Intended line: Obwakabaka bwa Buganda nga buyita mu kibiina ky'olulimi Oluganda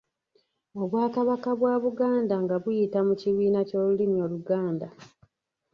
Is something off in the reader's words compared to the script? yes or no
no